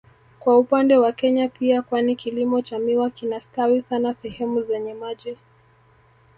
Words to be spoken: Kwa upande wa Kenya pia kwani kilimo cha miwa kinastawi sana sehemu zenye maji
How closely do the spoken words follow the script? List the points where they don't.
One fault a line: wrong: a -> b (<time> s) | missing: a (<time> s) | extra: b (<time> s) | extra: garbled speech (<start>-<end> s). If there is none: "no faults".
no faults